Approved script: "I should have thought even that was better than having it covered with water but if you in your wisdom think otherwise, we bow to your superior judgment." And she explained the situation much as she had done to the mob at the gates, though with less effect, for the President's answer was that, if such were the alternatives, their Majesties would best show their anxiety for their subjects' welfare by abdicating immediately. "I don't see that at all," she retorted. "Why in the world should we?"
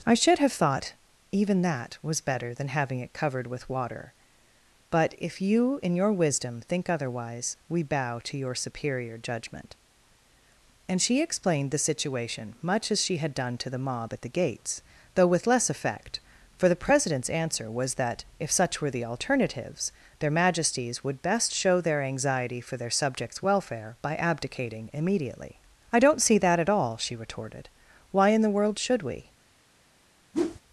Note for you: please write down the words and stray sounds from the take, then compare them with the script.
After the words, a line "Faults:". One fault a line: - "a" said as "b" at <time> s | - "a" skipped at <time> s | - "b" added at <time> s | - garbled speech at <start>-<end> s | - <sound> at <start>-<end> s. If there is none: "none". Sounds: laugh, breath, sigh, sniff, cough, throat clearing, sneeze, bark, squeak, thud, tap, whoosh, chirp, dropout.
"I should have thought even that was better than having it covered with water but if you in your wisdom think otherwise, we bow to your superior judgment." And she explained the situation much as she had done to the mob at the gates, though with less effect, for the President's answer was that, if such were the alternatives, their Majesties would best show their anxiety for their subjects' welfare by abdicating immediately. "I don't see that at all," she retorted. "Why in the world should we?"
Faults:
- whoosh at 30.3-30.6 s